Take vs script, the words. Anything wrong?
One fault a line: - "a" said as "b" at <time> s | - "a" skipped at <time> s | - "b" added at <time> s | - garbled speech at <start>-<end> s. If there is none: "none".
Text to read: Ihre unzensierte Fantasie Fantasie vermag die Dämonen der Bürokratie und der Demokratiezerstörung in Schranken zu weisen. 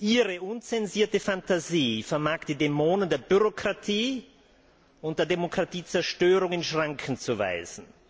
- "Fantasie" skipped at 2.0 s